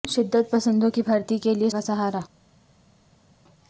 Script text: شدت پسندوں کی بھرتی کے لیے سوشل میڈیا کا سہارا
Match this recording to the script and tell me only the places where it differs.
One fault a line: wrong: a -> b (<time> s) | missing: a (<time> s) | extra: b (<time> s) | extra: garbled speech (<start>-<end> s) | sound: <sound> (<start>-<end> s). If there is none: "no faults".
missing: سوشل میڈیا (1.7 s)